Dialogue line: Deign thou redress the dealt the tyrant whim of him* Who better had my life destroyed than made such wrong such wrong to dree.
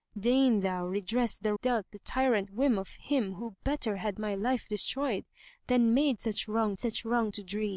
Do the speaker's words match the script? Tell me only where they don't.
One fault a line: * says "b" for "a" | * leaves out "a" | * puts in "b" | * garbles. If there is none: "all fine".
all fine